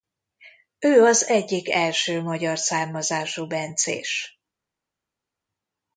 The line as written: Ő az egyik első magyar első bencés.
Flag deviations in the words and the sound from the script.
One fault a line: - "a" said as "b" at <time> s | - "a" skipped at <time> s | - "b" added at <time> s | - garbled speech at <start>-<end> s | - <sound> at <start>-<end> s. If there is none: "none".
- "első" said as "származású" at 2.6 s